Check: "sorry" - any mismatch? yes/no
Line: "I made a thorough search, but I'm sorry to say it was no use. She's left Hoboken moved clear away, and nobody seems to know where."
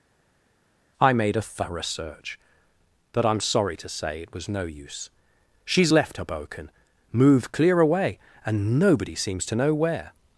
no